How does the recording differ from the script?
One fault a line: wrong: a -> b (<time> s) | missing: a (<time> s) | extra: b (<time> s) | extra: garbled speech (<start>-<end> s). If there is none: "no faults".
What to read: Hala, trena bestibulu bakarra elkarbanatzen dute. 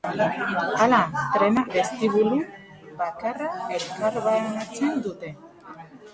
no faults